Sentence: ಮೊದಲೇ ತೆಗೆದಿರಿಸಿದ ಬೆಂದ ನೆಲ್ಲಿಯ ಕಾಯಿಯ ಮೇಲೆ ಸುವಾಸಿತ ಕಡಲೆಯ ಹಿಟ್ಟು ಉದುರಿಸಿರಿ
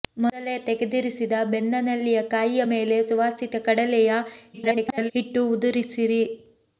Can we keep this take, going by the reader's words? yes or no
no